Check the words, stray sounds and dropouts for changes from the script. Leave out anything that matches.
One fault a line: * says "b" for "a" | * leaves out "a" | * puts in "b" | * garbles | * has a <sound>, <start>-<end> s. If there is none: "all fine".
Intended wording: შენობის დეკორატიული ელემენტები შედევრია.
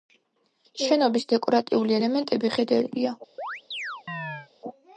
* has a chirp, 3.4-4.5 s